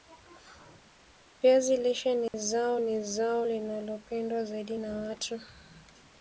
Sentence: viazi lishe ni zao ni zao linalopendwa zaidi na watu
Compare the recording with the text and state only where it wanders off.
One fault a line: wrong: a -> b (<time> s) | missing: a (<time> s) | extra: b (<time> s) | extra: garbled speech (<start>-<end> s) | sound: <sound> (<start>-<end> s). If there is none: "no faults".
sound: dropout (2.3-2.3 s)